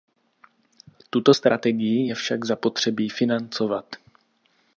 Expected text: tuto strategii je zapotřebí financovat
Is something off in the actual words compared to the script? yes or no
yes